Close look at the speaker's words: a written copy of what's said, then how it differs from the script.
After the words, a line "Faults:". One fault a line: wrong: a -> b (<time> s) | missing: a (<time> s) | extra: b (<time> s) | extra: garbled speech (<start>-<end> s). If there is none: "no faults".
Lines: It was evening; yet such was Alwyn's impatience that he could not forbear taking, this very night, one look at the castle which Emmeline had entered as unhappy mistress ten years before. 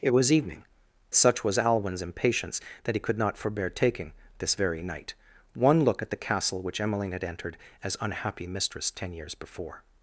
It was evening; such was Alwyn's impatience that he could not forbear taking, this very night, one look at the castle which Emmeline had entered as unhappy mistress ten years before.
Faults:
missing: yet (0.6 s)